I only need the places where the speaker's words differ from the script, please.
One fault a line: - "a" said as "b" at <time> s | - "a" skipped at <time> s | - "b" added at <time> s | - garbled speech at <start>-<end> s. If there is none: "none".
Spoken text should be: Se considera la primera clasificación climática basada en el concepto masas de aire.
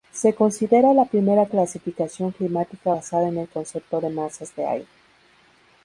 - "de" added at 4.0 s